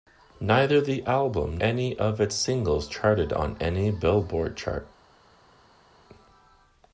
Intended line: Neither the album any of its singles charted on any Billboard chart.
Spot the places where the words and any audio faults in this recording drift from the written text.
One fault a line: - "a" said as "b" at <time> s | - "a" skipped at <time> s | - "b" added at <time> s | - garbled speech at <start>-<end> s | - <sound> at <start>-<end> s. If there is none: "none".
none